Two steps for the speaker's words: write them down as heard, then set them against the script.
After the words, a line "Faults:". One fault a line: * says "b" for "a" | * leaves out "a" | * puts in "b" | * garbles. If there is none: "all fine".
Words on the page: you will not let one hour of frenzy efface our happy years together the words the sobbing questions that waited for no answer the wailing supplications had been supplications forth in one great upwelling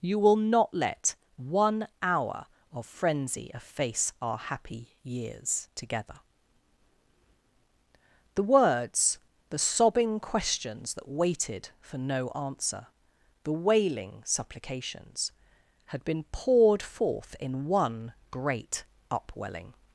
you will not let one hour of frenzy efface our happy years together the words the sobbing questions that waited for no answer the wailing supplications had been poured forth in one great upwelling
Faults:
* says "poured" for "supplications"